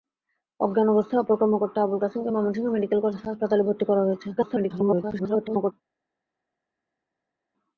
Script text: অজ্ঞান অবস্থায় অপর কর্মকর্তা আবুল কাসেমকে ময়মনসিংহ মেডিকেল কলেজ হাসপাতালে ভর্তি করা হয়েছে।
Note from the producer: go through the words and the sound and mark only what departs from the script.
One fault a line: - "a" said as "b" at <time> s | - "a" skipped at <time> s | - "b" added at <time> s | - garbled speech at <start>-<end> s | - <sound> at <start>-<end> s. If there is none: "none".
- garbled speech at 4.4-5.7 s